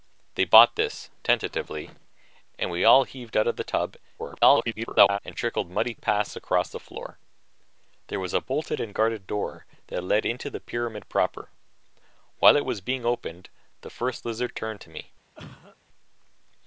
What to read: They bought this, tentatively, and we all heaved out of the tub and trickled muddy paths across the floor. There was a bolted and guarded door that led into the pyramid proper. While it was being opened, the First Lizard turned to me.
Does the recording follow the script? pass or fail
fail